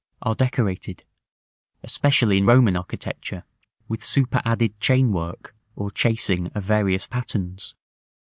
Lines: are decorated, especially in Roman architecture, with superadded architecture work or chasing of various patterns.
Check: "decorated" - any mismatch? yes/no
no